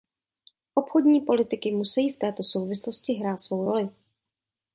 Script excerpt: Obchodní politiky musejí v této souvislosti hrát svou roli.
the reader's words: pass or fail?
pass